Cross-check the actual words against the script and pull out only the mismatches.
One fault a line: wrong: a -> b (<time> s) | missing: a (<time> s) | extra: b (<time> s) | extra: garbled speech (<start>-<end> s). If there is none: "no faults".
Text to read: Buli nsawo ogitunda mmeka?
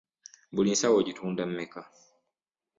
no faults